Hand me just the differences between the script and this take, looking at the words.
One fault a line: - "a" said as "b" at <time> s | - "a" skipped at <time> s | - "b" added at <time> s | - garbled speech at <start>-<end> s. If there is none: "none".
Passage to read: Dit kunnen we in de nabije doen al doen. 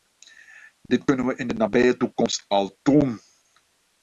- "doen" said as "toekomst" at 2.0 s